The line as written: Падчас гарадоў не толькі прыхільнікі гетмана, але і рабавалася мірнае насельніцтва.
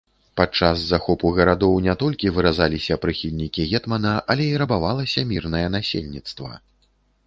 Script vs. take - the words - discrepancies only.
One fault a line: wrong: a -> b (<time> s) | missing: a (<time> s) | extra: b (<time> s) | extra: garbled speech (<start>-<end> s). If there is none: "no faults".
extra: захопу (0.9 s)
extra: выразаліся (2.4 s)